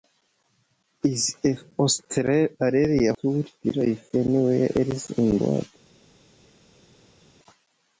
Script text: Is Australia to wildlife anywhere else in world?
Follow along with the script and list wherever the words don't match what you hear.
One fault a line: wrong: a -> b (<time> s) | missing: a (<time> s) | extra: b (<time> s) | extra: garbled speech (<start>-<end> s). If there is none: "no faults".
no faults